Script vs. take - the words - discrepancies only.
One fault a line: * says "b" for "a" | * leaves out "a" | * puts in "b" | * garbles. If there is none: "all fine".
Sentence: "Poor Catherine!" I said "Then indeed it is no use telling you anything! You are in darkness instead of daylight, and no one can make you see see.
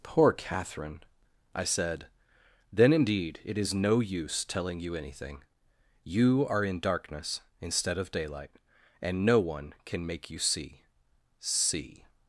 all fine